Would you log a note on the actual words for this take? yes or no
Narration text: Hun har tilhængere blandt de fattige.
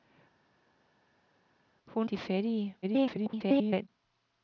yes